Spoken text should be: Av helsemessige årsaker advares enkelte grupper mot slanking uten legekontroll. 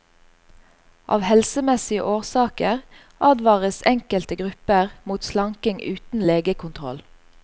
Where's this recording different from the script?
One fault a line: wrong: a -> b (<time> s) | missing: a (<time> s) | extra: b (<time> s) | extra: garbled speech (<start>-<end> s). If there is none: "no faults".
no faults